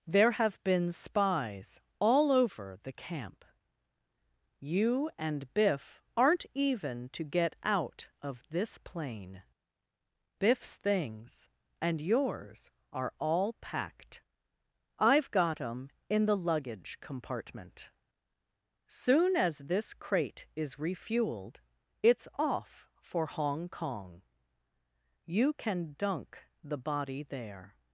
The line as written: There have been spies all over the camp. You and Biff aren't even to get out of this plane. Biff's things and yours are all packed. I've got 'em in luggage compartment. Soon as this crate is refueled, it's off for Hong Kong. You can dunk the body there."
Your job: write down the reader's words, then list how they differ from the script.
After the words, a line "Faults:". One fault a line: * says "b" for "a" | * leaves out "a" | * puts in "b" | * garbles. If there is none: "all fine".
There have been spies all over the camp. You and Biff aren't even to get out of this plane. Biff's things and yours are all packed. I've got 'em in the luggage compartment. Soon as this crate is refueled, it's off for Hong Kong. You can dunk the body there."
Faults:
* puts in "the"